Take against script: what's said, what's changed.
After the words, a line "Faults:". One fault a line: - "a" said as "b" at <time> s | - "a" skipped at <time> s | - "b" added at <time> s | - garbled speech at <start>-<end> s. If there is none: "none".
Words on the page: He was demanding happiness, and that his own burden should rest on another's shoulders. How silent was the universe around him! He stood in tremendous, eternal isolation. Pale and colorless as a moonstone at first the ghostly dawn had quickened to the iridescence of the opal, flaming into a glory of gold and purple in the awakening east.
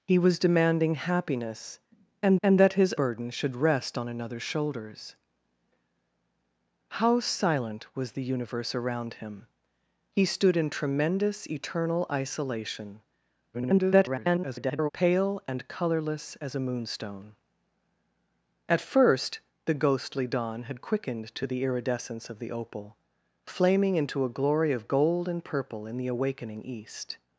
He was demanding happiness, and and that his burden should rest on another's shoulders. How silent was the universe around him! He stood in tremendous, eternal isolation. [garbled] Pale and colorless as a moonstone at first the ghostly dawn had quickened to the iridescence of the opal, flaming into a glory of gold and purple in the awakening east.
Faults:
- "and" added at 2.4 s
- "own" skipped at 2.9 s
- garbled speech at 13.5-14.9 s